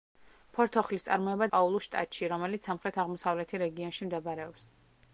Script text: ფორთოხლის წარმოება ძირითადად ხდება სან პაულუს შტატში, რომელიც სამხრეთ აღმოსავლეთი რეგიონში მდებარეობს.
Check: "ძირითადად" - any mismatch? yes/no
yes